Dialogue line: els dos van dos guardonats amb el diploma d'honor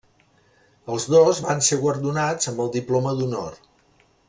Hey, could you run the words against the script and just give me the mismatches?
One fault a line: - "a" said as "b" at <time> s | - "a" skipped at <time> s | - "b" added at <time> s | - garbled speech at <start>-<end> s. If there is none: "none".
- "dos" said as "ser" at 1.7 s